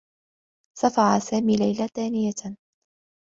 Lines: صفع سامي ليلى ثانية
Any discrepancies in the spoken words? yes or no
no